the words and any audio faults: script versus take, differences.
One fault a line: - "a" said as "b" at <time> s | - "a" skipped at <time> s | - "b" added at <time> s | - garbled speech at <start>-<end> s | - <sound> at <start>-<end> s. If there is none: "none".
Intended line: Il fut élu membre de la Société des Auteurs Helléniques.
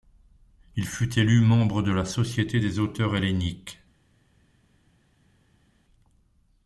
none